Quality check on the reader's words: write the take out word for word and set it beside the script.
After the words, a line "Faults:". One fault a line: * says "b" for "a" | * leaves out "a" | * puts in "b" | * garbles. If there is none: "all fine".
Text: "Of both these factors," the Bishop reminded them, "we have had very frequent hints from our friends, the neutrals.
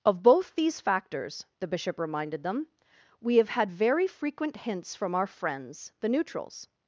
"Of both these factors," the Bishop reminded them, "we have had very frequent hints from our friends, the neutrals.
Faults:
all fine